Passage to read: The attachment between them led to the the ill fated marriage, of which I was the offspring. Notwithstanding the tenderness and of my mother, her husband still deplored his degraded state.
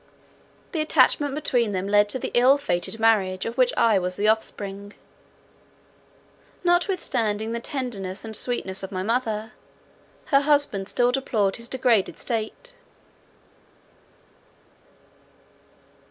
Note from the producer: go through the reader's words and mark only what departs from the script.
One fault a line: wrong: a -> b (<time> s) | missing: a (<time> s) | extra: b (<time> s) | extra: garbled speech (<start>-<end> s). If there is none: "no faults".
missing: the (2.3 s)
extra: sweetness (8.3 s)